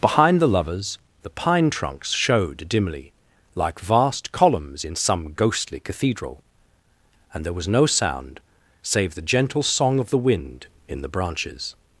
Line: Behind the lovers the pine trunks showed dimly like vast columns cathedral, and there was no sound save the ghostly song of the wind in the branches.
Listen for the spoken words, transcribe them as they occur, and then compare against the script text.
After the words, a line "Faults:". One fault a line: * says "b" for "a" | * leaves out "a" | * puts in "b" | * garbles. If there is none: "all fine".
Behind the lovers the pine trunks showed dimly like vast columns in some ghostly cathedral, and there was no sound save the gentle song of the wind in the branches.
Faults:
* puts in "in some ghostly"
* says "gentle" for "ghostly"